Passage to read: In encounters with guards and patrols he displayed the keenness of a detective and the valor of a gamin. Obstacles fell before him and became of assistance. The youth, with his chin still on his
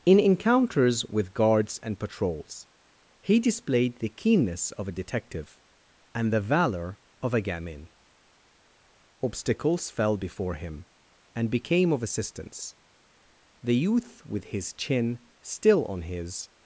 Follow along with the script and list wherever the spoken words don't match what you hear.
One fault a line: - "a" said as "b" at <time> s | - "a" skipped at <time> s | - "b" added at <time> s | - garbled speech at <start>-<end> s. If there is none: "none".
none